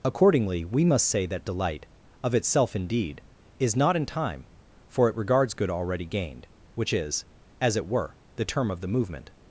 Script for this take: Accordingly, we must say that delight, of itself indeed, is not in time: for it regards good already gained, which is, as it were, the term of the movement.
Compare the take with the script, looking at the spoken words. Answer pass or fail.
pass